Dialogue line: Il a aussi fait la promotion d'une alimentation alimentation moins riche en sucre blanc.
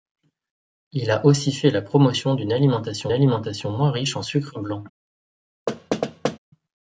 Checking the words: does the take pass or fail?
pass